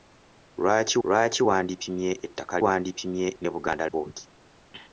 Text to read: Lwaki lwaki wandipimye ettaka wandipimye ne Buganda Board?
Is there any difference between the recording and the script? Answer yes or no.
no